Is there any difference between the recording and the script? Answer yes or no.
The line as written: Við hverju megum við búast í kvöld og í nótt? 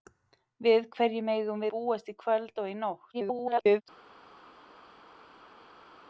yes